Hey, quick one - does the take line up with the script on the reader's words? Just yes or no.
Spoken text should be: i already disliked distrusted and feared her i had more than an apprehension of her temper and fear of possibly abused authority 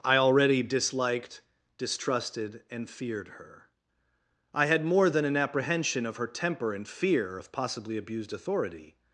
yes